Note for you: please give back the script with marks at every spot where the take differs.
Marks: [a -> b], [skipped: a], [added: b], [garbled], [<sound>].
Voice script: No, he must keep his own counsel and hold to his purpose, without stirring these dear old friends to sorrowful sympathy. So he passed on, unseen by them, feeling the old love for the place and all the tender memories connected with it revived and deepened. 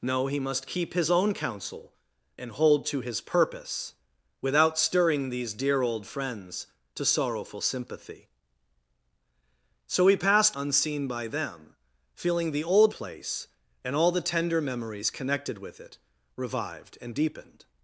No, he must keep his own counsel and hold to his purpose, without stirring these dear old friends to sorrowful sympathy. So he passed [skipped: on,] unseen by them, feeling the old [skipped: love for the] place and all the tender memories connected with it revived and deepened.